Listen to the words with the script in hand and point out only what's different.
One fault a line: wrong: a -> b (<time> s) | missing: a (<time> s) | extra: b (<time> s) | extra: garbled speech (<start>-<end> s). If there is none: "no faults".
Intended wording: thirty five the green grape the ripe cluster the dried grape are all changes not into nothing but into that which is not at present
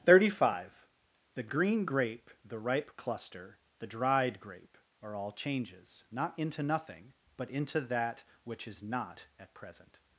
no faults